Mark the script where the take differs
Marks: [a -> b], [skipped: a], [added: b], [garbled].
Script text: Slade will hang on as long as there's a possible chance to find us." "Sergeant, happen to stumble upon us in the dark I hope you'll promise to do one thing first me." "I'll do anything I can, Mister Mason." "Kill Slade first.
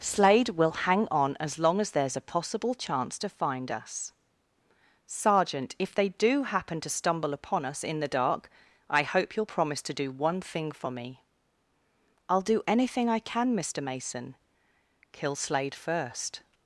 Slade will hang on as long as there's a possible chance to find us." "Sergeant, [added: if they do] happen to stumble upon us in the dark I hope you'll promise to do one thing [first -> for] me." "I'll do anything I can, Mister Mason." "Kill Slade first.